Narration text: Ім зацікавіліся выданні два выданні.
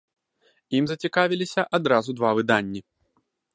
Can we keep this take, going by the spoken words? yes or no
no